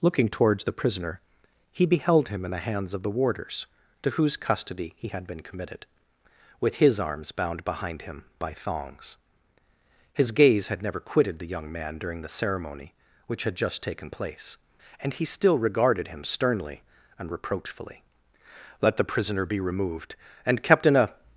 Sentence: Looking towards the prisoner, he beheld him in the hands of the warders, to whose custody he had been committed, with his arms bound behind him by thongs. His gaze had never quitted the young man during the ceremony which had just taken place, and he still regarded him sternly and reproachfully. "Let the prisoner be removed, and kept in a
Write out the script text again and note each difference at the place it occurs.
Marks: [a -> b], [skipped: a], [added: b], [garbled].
Looking towards the prisoner, he beheld him in the hands of the warders, to whose custody he had been committed, with his arms bound behind him by thongs. His gaze had never quitted the young man during the ceremony which had just taken place, and he still regarded him sternly and reproachfully. "Let the prisoner be removed, and kept in a